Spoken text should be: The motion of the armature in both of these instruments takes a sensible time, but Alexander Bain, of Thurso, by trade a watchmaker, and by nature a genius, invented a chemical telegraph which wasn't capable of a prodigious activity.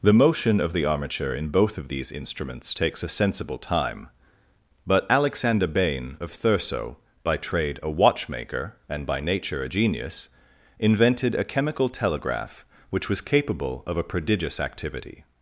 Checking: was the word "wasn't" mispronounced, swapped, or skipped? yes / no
yes